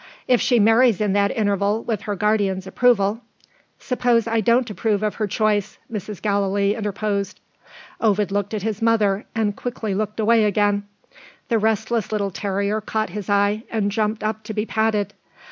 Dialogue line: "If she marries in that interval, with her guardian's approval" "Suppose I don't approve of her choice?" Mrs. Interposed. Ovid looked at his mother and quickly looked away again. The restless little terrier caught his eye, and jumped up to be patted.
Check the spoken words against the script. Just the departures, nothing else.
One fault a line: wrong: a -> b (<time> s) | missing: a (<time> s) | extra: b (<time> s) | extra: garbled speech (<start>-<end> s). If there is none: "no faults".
extra: Gallilee (6.2 s)